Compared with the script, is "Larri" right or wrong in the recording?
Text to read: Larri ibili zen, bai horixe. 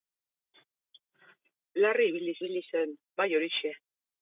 right